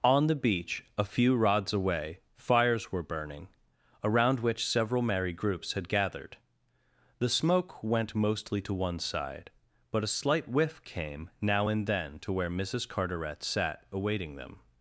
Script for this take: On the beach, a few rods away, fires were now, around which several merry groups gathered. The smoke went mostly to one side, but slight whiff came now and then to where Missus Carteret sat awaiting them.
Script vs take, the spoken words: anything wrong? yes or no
yes